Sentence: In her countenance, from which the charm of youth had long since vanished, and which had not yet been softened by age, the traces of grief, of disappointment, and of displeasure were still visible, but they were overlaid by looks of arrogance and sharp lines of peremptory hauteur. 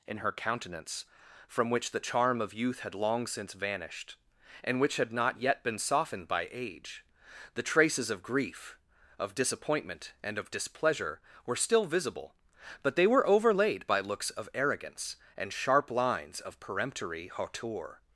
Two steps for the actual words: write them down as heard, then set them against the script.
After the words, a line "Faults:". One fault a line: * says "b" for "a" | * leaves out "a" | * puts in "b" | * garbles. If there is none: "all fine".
In her countenance, from which the charm of youth had long since vanished, and which had not yet been softened by age, the traces of grief, of disappointment, and of displeasure were still visible, but they were overlaid by looks of arrogance and sharp lines of peremptory hauteur.
Faults:
all fine